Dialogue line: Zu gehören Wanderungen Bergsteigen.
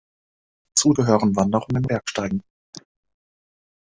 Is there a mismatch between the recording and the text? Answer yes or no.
no